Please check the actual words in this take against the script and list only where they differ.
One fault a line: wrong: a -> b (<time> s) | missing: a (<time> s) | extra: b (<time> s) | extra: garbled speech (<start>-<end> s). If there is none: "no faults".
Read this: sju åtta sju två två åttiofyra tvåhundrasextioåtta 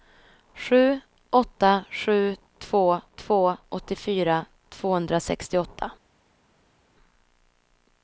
no faults